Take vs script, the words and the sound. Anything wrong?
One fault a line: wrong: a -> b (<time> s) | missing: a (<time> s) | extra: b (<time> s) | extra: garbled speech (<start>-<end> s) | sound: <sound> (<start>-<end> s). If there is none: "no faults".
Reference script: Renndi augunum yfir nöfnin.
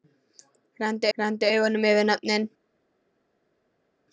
extra: renndi (1.2 s)